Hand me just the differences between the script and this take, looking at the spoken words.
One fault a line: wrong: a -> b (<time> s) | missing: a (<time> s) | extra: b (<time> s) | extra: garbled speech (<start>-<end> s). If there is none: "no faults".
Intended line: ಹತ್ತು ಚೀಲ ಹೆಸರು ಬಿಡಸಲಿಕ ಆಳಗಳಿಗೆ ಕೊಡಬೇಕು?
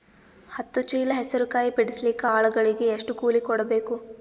extra: ಕಾಯಿ (1.5 s)
extra: ಎಷ್ಟು ಕೂಲಿ (2.9 s)